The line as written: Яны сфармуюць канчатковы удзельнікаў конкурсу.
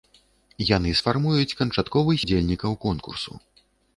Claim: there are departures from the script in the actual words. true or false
false